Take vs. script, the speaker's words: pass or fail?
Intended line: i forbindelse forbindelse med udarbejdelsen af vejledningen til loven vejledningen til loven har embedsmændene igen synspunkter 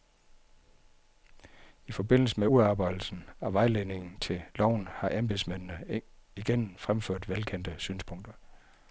fail